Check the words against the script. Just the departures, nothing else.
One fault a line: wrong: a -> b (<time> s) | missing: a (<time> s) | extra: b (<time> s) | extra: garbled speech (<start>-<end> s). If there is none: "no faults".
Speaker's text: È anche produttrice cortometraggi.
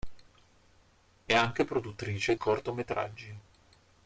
no faults